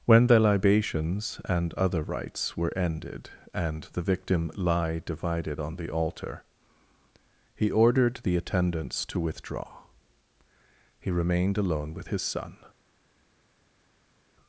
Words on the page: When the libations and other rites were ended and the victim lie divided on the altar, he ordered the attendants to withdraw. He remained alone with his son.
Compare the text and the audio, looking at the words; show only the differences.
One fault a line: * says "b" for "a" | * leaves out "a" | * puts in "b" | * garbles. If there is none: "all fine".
all fine